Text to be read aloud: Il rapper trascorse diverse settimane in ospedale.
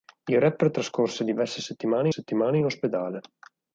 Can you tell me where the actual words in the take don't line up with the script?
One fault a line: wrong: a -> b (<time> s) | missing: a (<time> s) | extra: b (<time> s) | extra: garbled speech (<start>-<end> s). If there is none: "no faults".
extra: settimane (2.1 s)